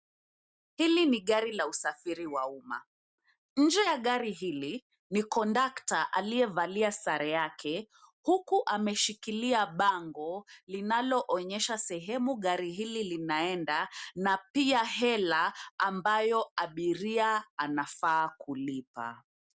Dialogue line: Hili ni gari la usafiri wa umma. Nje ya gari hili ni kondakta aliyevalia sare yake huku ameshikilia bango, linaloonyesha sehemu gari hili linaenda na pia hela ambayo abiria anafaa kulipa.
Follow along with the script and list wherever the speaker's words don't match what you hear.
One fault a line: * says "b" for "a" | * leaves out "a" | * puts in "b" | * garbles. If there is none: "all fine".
all fine